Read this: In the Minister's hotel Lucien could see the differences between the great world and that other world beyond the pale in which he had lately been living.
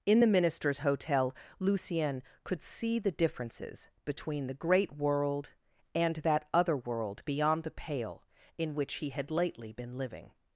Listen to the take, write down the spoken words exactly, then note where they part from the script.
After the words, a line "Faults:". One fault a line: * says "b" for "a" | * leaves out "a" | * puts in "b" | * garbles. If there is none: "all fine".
In the Minister's hotel Lucien could see the differences between the great world and that other world beyond the pale in which he had lately been living.
Faults:
all fine